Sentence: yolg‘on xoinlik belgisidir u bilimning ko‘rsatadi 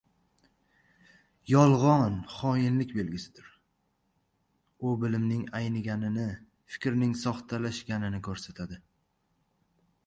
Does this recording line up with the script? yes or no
no